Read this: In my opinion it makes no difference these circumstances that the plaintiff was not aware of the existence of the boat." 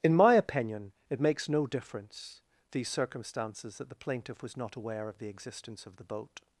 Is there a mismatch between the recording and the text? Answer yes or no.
no